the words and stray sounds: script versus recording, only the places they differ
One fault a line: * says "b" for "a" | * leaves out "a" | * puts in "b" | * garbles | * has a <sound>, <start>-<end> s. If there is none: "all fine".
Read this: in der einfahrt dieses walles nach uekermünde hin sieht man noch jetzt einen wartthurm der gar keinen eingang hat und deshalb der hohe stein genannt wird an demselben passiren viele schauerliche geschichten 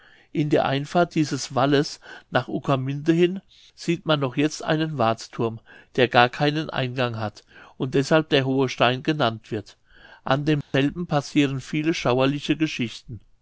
* has a dropout, 10.6-10.7 s